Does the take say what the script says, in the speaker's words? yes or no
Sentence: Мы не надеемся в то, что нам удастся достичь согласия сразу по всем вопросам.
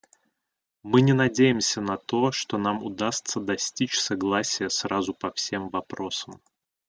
no